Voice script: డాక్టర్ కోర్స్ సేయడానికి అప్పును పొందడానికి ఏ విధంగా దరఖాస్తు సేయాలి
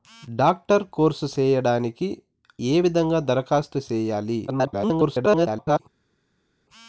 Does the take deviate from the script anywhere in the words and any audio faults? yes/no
yes